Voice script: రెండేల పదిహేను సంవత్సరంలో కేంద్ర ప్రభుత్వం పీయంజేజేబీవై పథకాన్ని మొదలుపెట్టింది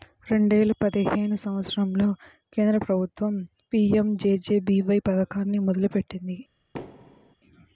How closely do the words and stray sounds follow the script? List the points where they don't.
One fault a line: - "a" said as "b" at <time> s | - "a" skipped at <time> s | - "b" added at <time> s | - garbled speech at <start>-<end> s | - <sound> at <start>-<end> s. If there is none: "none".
- thud at 6.7-7.4 s